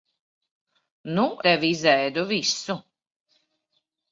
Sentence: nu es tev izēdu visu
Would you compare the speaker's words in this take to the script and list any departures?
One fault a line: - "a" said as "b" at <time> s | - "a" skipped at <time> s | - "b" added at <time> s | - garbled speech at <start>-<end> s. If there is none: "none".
- "es" skipped at 1.3 s